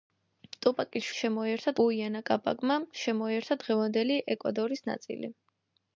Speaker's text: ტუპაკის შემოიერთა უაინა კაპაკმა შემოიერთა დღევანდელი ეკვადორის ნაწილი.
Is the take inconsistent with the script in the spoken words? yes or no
no